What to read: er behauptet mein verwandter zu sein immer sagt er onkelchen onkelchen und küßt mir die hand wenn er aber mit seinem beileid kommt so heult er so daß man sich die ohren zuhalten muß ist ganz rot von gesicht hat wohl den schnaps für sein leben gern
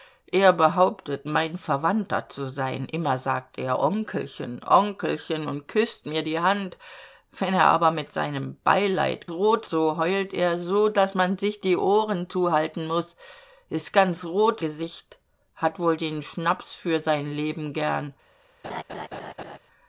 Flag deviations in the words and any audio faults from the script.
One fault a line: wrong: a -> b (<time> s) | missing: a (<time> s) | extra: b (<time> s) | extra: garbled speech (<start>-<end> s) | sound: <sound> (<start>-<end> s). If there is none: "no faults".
wrong: kommt -> rot (9.3 s)
missing: von (14.6 s)
sound: laugh (18.6-19.6 s)